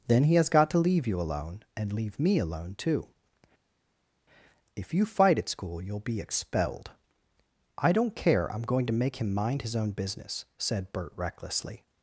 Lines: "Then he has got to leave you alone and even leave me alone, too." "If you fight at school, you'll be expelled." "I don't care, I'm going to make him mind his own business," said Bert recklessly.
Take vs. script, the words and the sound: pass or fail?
fail